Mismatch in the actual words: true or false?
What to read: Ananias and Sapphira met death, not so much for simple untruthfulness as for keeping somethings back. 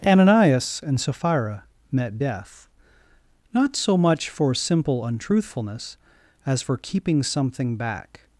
true